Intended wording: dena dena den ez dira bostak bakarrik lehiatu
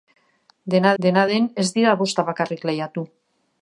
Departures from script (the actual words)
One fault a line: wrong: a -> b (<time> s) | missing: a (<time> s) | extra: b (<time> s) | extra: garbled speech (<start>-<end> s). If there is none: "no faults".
no faults